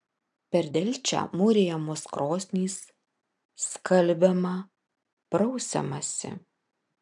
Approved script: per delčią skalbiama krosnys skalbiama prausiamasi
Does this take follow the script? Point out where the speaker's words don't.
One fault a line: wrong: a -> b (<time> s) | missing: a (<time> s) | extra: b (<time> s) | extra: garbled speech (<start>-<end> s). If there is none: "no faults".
wrong: skalbiama -> mūrijamos (1.4 s)